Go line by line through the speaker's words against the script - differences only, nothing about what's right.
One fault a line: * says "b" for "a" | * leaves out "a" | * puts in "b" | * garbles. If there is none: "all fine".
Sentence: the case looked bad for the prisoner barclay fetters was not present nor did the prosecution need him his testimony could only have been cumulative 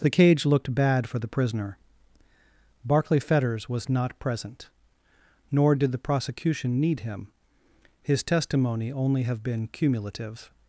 * says "cage" for "case"
* leaves out "could"